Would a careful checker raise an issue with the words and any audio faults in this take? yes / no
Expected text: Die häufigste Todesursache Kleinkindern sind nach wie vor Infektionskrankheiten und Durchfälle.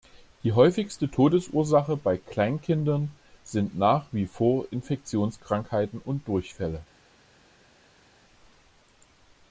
yes